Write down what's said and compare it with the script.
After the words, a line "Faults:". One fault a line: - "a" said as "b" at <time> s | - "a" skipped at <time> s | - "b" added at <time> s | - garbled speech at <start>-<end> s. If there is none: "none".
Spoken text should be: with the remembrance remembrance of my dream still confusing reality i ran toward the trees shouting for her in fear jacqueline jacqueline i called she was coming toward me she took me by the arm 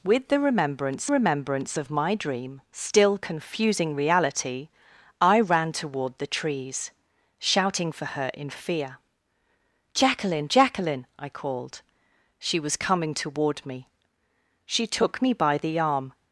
with the remembrance remembrance of my dream still confusing reality i ran toward the trees shouting for her in fear jacqueline jacqueline i called she was coming toward me she took me by the arm
Faults:
none